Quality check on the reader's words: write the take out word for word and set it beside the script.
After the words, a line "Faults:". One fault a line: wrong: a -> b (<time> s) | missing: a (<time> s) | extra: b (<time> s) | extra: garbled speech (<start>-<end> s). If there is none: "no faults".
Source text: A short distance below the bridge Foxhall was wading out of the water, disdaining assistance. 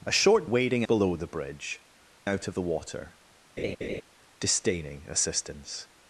A short wading below the bridge Out of the water, disdaining assistance.
Faults:
wrong: distance -> wading (0.4 s)
missing: Foxhall was wading (1.8 s)